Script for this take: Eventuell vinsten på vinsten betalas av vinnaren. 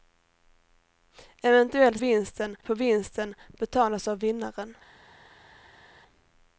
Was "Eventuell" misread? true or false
false